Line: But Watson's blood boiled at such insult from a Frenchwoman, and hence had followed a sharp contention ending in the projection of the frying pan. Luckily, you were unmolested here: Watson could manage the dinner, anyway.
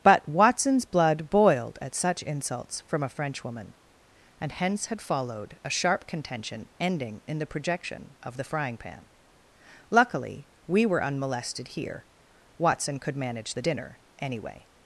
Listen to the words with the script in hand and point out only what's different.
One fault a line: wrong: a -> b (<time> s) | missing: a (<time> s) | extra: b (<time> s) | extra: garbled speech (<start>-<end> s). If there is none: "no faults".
wrong: insult -> insults (2.2 s)
wrong: you -> we (10.7 s)